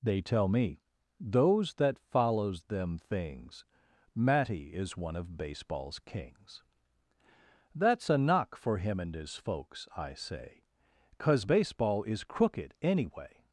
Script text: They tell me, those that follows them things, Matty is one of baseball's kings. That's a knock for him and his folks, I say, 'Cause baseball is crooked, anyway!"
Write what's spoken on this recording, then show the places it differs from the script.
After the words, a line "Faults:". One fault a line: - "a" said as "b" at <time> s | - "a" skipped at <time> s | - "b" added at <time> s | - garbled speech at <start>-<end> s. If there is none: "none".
They tell me, those that follows them things, Matty is one of baseball's kings. That's a knock for him and his folks, I say, 'Cause baseball is crooked, anyway!"
Faults:
none